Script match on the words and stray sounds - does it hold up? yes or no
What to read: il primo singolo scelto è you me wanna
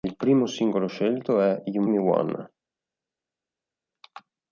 yes